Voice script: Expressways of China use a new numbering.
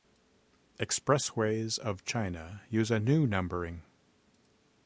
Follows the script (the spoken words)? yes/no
yes